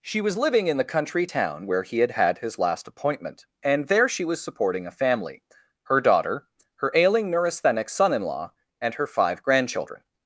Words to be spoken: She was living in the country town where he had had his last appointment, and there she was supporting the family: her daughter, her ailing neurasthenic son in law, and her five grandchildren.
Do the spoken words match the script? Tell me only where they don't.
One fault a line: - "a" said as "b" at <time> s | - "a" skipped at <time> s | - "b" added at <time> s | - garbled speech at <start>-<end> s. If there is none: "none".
- "the" said as "a" at 4.9 s